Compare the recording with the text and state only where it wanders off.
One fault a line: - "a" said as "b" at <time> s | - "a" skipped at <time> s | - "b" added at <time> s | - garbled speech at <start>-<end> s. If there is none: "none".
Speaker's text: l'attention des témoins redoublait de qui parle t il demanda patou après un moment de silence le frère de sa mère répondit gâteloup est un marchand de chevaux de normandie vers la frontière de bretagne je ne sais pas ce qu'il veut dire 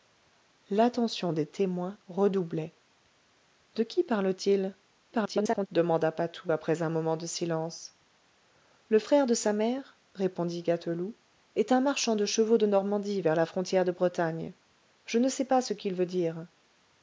- garbled speech at 5.1-5.7 s